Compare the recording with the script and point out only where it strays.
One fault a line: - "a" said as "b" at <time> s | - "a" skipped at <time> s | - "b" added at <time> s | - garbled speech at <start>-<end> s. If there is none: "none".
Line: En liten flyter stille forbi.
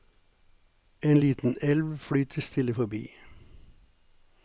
- "elv" added at 1.6 s